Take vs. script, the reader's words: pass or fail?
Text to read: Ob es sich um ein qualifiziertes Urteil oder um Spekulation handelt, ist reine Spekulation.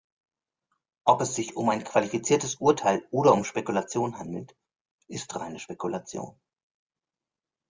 pass